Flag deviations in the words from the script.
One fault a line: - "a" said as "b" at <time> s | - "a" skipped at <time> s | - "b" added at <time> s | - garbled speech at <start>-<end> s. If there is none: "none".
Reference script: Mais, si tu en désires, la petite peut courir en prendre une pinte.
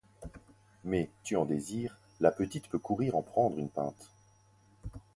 - "si" skipped at 1.1 s